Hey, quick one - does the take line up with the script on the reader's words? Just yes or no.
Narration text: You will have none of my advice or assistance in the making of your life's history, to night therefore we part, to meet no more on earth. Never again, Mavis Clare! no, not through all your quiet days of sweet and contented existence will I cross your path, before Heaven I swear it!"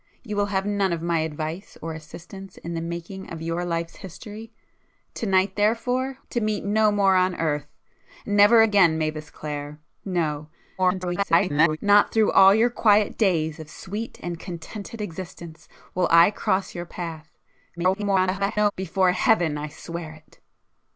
no